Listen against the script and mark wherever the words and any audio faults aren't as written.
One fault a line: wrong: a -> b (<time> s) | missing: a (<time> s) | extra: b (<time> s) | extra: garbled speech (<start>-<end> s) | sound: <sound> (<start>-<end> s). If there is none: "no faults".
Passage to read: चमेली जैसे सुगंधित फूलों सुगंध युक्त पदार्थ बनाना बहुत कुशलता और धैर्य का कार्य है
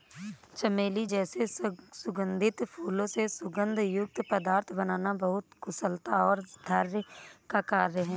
extra: से (3.1 s)